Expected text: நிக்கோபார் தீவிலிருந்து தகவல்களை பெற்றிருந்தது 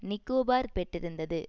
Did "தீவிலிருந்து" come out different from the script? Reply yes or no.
yes